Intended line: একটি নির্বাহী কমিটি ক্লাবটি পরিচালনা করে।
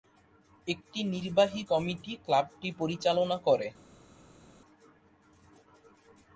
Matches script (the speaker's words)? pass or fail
pass